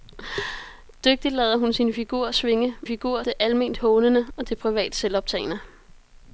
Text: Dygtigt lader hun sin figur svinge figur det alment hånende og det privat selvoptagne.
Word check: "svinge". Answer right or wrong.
right